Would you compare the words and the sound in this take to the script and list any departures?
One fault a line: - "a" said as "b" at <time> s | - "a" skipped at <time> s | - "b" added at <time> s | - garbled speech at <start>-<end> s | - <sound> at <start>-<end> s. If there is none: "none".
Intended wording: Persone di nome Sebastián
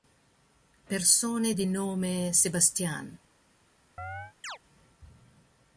- chirp at 4.0-4.6 s